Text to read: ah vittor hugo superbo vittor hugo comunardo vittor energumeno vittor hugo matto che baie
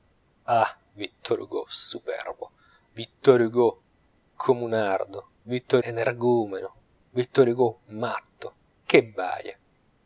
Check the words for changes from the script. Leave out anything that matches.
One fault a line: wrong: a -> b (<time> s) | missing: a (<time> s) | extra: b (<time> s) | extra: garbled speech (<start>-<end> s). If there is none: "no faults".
no faults